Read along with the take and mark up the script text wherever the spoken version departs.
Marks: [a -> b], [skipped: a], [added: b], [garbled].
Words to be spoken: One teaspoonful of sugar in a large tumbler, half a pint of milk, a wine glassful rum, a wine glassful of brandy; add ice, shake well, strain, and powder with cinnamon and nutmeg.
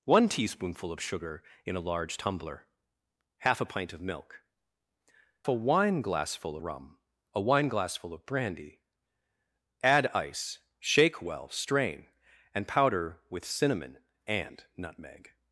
One teaspoonful of sugar in a large tumbler, half a pint of milk, a wine glassful rum, a wine glassful of brandy; add ice, shake well, strain, and powder with cinnamon and nutmeg.